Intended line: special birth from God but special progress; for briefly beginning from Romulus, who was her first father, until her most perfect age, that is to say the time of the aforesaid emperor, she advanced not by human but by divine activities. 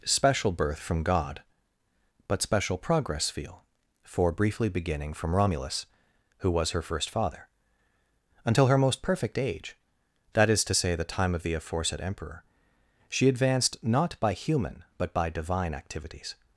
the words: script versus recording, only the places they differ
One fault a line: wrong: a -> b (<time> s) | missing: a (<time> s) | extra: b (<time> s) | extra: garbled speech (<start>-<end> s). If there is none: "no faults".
extra: feel (3.3 s)